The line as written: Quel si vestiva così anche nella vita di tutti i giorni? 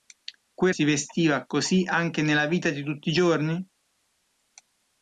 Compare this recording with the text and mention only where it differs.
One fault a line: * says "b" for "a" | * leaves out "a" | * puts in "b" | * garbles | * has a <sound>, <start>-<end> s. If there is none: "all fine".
all fine